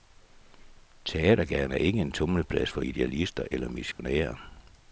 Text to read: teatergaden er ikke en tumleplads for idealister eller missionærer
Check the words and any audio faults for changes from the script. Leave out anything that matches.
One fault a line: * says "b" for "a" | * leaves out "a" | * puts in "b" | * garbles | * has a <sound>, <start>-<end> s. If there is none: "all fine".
* has a dropout, 3.9-4.0 s